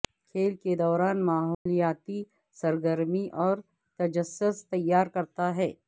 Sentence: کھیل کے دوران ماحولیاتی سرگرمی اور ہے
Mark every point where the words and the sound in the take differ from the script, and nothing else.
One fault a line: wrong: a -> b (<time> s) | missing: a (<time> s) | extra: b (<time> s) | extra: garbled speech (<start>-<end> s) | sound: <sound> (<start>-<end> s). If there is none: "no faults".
sound: dropout (1.5-1.7 s)
extra: تجسس تیار کرتا (4.0 s)